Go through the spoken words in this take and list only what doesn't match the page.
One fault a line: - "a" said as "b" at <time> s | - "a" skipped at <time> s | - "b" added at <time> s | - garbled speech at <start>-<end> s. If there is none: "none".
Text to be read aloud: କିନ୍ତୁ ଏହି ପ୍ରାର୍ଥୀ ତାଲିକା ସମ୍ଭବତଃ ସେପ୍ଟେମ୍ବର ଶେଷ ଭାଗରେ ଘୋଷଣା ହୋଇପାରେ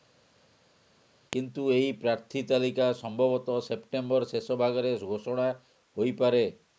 none